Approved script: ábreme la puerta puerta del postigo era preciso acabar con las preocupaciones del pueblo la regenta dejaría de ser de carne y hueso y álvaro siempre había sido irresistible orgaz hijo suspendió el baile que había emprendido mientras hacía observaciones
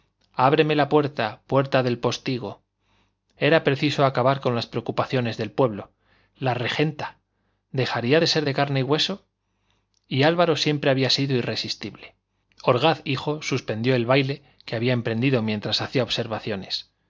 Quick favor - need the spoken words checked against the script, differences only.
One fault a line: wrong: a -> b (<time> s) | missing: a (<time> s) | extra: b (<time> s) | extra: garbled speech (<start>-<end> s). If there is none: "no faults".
no faults